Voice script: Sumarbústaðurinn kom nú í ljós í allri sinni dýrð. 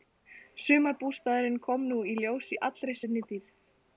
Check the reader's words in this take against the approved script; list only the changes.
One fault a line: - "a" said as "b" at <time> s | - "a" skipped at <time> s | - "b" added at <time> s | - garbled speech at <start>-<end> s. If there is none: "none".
none